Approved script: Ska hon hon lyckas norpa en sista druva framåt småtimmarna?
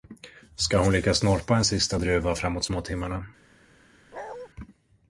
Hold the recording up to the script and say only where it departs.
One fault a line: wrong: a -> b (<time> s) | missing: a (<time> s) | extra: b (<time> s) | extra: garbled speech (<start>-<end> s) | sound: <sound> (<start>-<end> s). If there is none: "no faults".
missing: hon (0.9 s)
sound: bark (4.1-4.5 s)